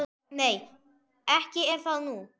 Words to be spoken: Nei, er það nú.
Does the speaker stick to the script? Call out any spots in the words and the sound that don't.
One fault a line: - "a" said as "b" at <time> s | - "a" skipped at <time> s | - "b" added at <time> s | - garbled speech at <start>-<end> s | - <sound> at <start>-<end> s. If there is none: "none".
- "ekki" added at 1.3 s